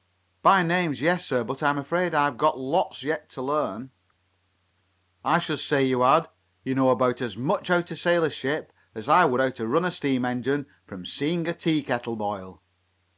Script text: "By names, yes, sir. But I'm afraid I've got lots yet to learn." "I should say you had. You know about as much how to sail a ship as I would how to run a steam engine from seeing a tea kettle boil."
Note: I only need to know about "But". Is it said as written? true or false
true